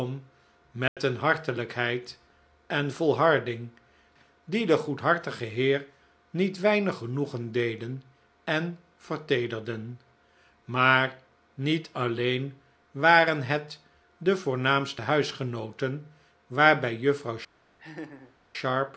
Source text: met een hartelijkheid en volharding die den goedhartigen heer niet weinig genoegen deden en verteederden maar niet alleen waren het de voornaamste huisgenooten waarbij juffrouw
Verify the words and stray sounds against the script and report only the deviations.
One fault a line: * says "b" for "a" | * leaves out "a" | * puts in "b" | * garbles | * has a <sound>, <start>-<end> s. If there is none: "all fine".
* has a dropout, 0.9-1.0 s
* has a laugh, 17.8-18.4 s